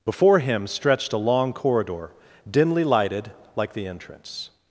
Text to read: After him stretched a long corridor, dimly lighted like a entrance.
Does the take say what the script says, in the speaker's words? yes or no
no